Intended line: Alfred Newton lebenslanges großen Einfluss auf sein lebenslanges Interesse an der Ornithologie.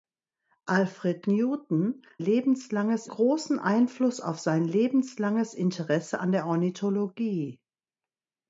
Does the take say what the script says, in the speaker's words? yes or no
yes